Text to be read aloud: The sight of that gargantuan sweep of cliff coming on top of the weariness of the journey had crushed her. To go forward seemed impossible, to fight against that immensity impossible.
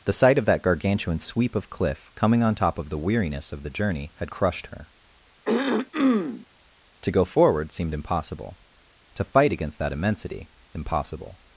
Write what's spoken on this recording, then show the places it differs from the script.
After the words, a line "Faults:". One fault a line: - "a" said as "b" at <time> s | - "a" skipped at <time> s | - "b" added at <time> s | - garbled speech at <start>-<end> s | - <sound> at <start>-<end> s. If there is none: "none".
The sight of that gargantuan sweep of cliff coming on top of the weariness of the journey had crushed her. To go forward seemed impossible, to fight against that immensity impossible.
Faults:
- throat clearing at 5.4-6.5 s